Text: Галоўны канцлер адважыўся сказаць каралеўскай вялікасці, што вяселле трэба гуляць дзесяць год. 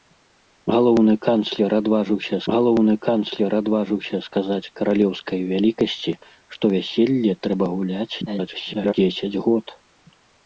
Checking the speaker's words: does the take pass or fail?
fail